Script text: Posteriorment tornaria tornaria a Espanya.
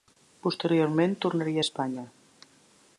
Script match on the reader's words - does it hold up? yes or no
no